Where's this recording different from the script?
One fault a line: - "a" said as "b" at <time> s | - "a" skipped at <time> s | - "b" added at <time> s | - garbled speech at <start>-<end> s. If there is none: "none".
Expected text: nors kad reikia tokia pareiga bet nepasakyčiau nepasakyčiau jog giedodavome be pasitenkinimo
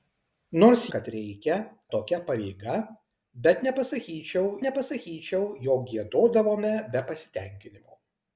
none